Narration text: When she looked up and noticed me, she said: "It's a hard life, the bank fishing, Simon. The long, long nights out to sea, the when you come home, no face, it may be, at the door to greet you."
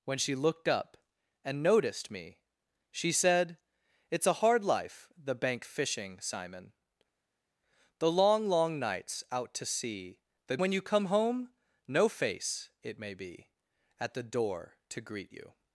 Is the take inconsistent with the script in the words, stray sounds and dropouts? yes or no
no